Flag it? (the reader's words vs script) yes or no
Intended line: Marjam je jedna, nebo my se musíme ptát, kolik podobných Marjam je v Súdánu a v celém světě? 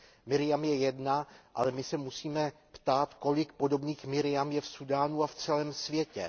yes